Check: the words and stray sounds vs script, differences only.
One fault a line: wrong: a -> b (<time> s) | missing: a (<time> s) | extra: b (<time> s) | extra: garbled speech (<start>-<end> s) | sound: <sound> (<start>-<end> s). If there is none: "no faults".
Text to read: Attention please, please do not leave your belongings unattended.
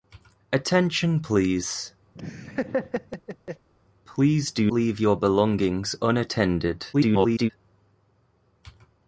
sound: laugh (2.1-3.7 s)
missing: not (4.7 s)
extra: garbled speech (6.9-7.5 s)